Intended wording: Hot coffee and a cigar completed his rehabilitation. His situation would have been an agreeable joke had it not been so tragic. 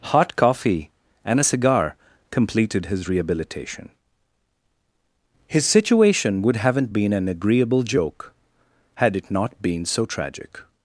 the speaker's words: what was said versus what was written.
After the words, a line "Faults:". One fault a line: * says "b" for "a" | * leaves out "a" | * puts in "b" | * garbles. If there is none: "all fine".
Hot coffee and a cigar completed his rehabilitation. His situation would haven't been an agreeable joke had it not been so tragic.
Faults:
* says "haven't" for "have"